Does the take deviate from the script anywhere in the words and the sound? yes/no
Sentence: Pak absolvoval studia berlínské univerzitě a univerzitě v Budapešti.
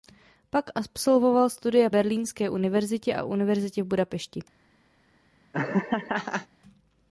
yes